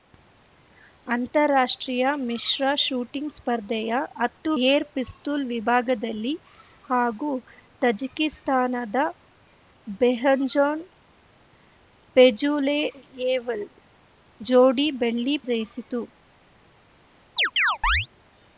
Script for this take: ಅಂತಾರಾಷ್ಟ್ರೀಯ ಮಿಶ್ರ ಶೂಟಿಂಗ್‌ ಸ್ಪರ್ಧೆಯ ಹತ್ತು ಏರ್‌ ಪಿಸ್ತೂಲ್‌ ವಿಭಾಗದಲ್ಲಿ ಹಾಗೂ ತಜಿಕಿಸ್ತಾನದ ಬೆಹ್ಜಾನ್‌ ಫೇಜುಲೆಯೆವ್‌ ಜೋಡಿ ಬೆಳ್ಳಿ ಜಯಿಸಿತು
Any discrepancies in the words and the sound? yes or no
yes